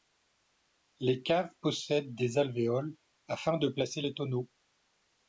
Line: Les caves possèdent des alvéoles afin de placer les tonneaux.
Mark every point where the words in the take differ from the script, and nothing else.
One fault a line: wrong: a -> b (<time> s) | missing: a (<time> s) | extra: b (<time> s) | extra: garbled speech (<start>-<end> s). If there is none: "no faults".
no faults